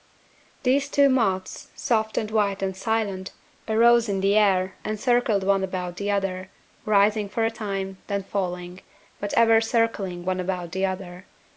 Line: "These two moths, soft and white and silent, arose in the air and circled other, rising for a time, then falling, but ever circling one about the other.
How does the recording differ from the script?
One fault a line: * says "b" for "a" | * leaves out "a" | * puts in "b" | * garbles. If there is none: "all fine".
* puts in "one about the"